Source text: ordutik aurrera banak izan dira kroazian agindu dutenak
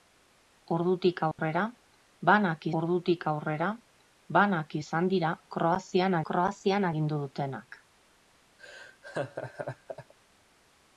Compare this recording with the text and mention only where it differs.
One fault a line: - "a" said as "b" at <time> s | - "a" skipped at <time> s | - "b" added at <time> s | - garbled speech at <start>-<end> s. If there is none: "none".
- "ordutik aurrera banak" added at 2.8 s
- "kroazian" added at 6.3 s